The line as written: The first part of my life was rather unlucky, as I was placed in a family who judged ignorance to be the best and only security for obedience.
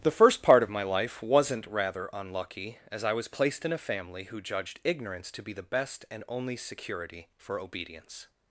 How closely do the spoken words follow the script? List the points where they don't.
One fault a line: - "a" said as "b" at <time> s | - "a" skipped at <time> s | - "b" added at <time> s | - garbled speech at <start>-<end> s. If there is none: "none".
- "was" said as "wasn't" at 1.2 s